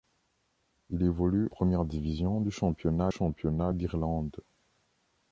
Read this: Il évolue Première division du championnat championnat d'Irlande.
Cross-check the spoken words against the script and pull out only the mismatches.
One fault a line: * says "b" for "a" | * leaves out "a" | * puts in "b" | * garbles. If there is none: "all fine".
all fine